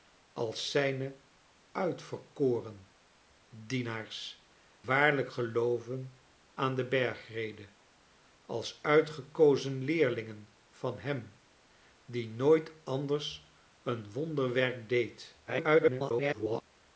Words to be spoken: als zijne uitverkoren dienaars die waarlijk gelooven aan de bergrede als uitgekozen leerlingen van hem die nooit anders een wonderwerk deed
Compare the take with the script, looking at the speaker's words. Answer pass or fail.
fail